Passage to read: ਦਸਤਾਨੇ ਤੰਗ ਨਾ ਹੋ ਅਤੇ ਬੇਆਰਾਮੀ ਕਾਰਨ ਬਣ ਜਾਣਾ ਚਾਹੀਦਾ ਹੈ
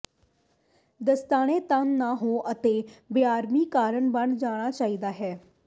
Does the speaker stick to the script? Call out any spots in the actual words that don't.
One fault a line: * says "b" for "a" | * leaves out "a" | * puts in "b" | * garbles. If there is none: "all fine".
all fine